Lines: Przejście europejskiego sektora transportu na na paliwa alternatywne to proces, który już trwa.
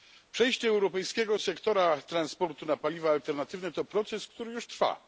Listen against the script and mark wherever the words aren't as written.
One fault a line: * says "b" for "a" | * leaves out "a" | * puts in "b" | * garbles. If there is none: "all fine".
* leaves out "na"